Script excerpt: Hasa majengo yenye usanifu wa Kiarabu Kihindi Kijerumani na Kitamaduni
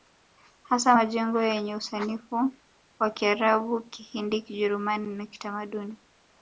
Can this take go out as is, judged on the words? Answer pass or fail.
pass